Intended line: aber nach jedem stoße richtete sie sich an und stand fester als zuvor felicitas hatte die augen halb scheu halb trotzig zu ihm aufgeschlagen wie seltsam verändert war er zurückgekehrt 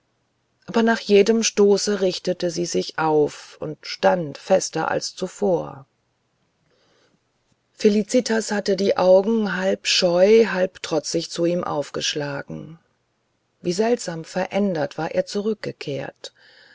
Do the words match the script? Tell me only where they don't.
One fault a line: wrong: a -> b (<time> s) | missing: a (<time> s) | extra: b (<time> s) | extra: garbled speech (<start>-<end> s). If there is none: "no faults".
wrong: an -> auf (3.0 s)